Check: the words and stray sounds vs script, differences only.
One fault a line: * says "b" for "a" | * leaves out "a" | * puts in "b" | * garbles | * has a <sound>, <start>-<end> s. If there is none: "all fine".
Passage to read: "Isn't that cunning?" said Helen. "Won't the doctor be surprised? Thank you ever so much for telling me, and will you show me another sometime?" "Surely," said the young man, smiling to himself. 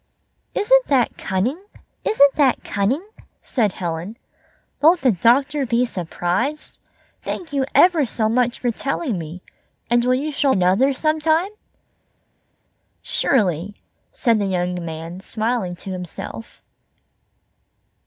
* puts in "isn't that cunning"
* leaves out "me"